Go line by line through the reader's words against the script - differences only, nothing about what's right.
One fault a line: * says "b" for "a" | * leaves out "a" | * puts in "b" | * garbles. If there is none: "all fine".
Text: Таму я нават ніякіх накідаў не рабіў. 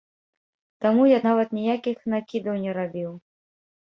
all fine